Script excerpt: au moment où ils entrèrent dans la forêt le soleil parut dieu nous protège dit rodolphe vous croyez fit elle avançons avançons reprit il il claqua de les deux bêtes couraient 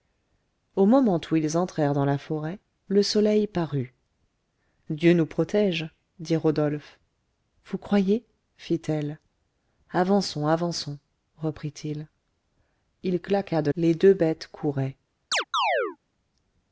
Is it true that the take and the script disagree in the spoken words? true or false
false